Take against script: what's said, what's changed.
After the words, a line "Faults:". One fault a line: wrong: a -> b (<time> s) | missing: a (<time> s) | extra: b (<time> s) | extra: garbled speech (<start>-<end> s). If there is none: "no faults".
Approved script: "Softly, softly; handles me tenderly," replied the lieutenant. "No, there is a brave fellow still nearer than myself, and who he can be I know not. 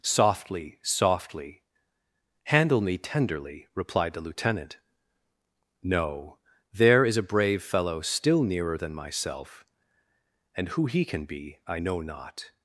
"Softly, softly; handle me tenderly," replied the lieutenant. "No, there is a brave fellow still nearer than myself, and who he can be I know not.
Faults:
wrong: handles -> handle (2.5 s)